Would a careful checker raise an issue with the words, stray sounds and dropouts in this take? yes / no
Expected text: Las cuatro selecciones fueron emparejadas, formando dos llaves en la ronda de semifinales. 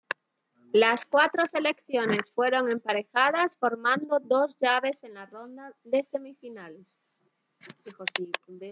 no